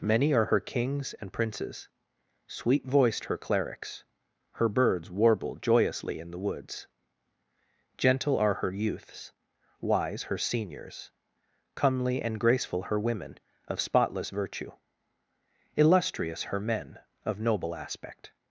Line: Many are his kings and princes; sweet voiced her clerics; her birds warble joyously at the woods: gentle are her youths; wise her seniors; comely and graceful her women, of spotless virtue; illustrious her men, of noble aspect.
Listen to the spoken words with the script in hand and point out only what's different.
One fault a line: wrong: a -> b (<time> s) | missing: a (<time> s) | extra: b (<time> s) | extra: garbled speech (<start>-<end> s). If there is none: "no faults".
wrong: his -> her (0.5 s)
wrong: at -> in (6.2 s)